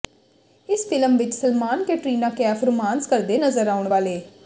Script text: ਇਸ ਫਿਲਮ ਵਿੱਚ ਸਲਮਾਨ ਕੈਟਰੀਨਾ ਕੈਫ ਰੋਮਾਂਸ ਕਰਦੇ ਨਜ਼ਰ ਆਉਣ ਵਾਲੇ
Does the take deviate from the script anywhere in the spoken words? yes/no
no